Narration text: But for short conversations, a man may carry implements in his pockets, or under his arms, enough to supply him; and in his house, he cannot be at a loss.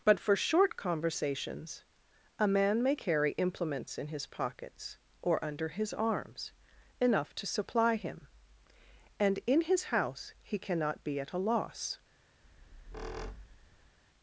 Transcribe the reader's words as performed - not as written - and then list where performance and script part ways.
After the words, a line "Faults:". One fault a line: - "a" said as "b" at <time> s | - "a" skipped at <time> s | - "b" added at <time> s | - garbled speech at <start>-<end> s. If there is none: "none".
But for short conversations, a man may carry implements in his pockets, or under his arms, enough to supply him; and in his house, he cannot be at a loss.
Faults:
none